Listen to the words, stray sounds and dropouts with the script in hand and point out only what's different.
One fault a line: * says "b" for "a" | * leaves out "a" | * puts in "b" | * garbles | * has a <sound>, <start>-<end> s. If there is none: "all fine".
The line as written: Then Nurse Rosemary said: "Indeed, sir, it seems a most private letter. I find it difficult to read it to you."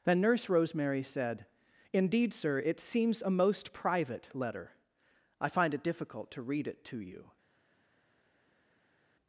all fine